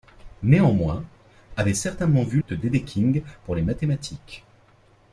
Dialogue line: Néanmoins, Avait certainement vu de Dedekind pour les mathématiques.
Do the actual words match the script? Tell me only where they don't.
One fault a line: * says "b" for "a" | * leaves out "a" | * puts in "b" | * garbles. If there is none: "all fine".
all fine